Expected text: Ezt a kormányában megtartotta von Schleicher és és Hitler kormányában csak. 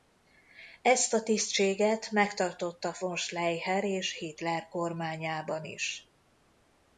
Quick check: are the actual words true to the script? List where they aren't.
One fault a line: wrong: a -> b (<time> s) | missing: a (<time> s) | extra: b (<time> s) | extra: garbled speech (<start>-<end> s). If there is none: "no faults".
wrong: kormányában -> tisztséget (1.2 s)
missing: és (4.2 s)
wrong: csak -> is (5.6 s)